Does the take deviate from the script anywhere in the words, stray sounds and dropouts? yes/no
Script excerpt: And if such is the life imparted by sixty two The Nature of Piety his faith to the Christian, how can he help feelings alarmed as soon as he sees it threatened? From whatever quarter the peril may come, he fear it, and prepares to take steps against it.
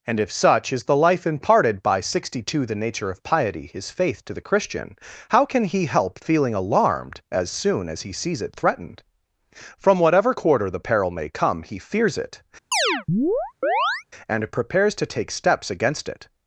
yes